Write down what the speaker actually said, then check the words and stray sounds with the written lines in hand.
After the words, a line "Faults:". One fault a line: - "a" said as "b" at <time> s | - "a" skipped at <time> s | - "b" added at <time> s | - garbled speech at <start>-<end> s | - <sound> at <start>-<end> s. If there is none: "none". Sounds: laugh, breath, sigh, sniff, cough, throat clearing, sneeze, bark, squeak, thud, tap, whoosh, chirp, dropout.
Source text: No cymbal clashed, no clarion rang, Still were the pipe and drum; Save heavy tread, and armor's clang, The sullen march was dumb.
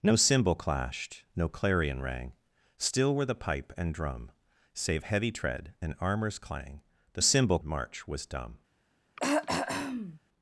No cymbal clashed, no clarion rang, Still were the pipe and drum; Save heavy tread, and armor's clang, The cymbal march was dumb.
Faults:
- "sullen" said as "cymbal" at 7.2 s
- throat clearing at 9.2-10.2 s